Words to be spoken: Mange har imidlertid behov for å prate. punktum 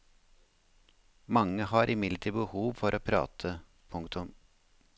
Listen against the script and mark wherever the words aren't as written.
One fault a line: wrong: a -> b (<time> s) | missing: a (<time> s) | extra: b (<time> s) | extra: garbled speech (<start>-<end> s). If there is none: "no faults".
no faults